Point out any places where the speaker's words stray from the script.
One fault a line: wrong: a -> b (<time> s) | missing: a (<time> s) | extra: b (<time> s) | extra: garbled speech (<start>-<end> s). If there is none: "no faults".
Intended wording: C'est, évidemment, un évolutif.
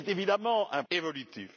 no faults